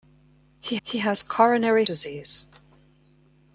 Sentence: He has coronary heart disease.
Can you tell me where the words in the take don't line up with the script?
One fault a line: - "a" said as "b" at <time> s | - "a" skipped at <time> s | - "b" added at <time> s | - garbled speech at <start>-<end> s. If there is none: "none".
- "he" added at 0.8 s
- "heart" skipped at 1.8 s